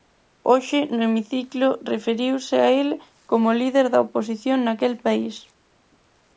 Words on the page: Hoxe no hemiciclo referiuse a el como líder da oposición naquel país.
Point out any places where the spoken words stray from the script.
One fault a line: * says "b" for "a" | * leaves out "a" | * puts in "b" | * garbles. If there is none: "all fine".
all fine